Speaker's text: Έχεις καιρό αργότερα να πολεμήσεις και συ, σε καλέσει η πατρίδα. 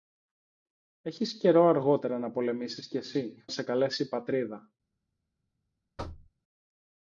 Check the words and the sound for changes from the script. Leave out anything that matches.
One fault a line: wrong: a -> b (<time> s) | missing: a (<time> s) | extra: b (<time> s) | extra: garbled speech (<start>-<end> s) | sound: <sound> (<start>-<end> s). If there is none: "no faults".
sound: thud (6.0-6.3 s)